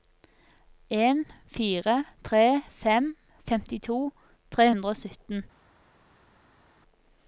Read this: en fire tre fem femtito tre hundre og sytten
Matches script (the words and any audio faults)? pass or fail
pass